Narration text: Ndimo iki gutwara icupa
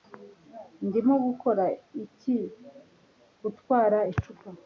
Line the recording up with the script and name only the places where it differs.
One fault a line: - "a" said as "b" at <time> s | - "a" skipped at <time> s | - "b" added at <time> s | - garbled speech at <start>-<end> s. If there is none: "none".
- "gukora" added at 1.2 s